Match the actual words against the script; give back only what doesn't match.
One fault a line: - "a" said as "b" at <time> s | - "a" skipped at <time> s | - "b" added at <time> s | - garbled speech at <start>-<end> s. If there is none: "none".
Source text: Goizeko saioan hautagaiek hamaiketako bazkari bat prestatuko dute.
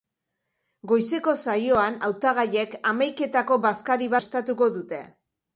- "bat" skipped at 4.1 s